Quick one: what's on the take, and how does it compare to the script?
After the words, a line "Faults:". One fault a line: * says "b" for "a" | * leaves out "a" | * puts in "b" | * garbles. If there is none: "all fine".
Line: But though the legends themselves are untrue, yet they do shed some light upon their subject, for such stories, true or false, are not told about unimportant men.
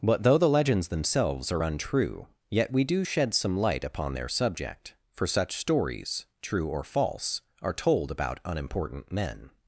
But though the legends themselves are untrue, yet we do shed some light upon their subject, for such stories, true or false, are told about unimportant men.
Faults:
* says "we" for "they"
* leaves out "not"